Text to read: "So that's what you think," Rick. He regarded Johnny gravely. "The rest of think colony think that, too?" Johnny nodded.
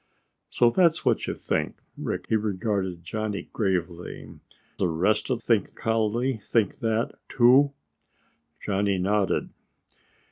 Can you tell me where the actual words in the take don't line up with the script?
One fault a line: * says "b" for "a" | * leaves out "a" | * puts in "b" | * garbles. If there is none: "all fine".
all fine